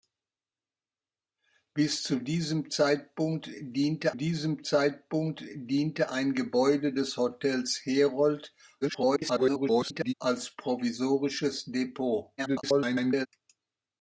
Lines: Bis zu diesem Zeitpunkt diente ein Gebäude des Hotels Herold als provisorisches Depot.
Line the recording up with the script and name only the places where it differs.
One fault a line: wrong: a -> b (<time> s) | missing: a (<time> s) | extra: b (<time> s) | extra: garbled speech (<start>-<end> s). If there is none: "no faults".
extra: diesem Zeitpunkt diente (4.1 s)
extra: garbled speech (8.8-10.1 s)
extra: garbled speech (12.4-13.3 s)